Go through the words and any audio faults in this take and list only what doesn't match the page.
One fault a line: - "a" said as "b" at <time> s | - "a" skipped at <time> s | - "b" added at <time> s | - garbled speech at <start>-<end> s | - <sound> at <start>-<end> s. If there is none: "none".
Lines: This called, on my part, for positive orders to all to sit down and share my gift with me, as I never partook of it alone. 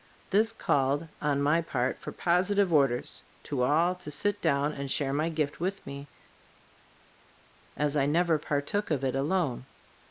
none